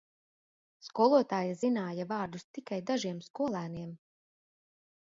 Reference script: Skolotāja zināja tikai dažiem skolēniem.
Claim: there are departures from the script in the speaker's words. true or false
true